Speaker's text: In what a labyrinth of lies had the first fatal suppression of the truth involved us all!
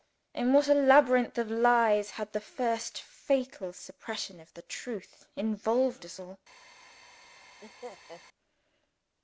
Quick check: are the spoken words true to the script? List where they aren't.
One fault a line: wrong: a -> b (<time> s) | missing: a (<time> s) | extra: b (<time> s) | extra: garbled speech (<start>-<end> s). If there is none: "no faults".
no faults